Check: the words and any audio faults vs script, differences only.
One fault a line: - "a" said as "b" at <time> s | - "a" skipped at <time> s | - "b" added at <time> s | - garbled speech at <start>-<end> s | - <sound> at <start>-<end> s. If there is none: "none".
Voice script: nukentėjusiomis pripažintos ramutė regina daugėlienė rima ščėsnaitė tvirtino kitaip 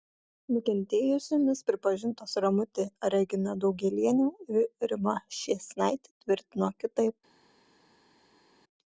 - "ir" added at 4.6 s